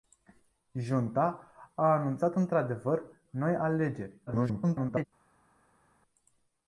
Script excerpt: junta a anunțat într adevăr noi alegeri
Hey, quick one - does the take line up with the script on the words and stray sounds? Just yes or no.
no